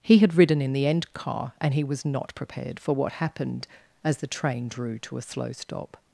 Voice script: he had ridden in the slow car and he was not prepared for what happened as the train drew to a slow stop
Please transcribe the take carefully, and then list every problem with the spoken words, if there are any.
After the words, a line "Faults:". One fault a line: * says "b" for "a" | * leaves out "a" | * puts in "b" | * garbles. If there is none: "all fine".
he had ridden in the end car and he was not prepared for what happened as the train drew to a slow stop
Faults:
* says "end" for "slow"